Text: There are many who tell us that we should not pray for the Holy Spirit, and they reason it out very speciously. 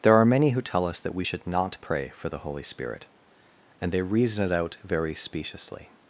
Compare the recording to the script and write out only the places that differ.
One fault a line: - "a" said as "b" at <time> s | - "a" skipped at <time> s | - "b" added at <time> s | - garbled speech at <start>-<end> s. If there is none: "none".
none